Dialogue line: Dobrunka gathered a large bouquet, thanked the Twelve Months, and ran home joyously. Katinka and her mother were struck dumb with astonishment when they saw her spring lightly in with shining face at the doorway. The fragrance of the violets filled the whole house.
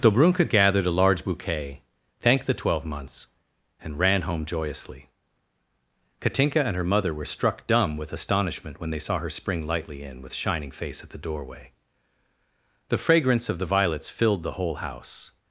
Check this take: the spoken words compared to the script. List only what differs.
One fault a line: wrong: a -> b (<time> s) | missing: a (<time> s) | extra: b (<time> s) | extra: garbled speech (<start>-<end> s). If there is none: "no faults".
no faults